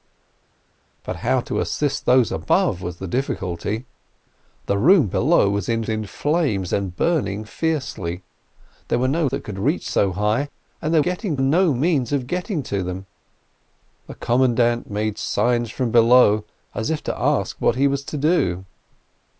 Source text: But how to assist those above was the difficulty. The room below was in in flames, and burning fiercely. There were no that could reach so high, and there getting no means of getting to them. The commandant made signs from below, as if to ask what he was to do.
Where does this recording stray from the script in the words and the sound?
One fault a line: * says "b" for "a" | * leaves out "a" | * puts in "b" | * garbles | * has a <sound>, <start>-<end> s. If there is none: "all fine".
all fine